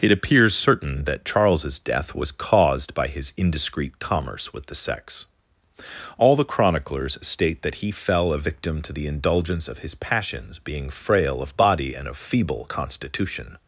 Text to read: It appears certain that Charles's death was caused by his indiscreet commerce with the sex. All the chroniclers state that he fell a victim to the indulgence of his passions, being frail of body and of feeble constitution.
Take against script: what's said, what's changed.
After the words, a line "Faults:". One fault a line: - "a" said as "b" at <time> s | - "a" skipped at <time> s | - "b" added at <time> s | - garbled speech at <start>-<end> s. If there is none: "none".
It appears certain that Charles's death was caused by his indiscreet commerce with the sex. All the chroniclers state that he fell a victim to the indulgence of his passions, being frail of body and of feeble constitution.
Faults:
none